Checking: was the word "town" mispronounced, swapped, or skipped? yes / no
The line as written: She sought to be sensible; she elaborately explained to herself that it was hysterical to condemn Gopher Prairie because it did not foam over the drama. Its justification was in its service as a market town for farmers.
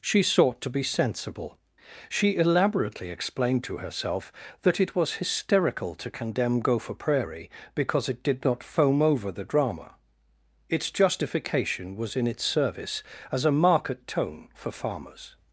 yes